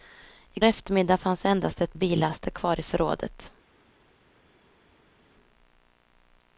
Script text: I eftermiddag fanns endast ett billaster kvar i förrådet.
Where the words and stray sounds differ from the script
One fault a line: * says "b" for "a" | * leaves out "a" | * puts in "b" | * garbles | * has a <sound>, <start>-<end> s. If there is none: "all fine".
all fine